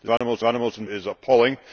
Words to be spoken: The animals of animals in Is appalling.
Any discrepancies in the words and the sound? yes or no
yes